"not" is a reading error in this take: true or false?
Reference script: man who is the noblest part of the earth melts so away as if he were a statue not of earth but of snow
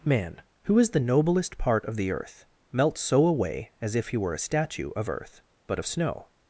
true